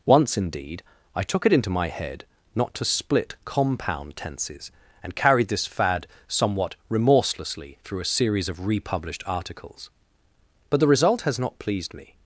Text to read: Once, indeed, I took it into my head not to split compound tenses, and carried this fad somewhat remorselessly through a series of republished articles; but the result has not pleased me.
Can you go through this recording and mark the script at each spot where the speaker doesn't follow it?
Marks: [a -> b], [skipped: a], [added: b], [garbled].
Once, indeed, I took it into my head not to split compound tenses, and carried this fad somewhat remorselessly through a series of republished articles; but the result has not pleased me.